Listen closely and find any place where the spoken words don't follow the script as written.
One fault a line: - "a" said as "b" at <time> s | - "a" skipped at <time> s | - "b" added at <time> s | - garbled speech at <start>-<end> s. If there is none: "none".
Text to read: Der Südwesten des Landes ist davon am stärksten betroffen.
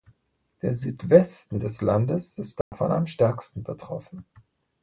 none